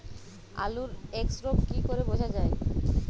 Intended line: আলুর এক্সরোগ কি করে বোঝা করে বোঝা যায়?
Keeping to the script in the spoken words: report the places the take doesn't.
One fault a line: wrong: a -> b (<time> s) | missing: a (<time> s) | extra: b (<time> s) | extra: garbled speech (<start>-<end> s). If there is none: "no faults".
missing: করে বোঝা (2.3 s)